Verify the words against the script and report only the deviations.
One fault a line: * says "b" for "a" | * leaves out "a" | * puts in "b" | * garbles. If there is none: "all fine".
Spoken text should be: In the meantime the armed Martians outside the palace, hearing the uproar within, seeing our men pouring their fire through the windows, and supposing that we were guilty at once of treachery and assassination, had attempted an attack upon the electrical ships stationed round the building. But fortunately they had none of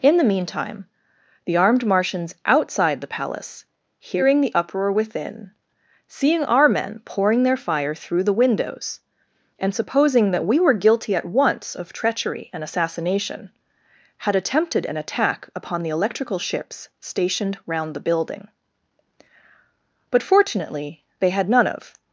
all fine